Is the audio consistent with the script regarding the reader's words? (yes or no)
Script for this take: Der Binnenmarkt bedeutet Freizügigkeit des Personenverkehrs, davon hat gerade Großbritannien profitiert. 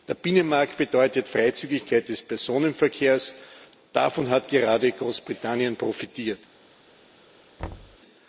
yes